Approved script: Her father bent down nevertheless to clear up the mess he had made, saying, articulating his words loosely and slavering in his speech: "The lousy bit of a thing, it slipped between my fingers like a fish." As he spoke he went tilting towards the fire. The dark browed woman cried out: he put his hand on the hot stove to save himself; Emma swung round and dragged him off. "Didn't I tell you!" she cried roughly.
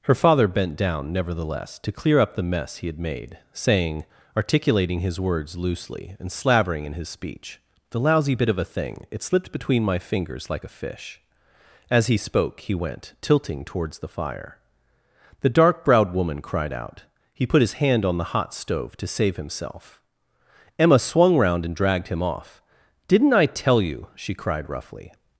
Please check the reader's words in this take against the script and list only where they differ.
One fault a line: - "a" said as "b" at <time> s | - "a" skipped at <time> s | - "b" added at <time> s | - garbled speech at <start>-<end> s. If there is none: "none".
none